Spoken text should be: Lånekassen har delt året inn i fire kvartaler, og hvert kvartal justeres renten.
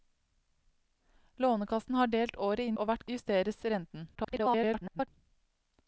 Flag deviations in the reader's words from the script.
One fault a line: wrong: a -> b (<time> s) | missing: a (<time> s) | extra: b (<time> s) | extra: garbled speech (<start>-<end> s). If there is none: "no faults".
missing: i fire kvartaler (2.8 s)
missing: kvartal (3.1 s)
extra: garbled speech (4.1-5.1 s)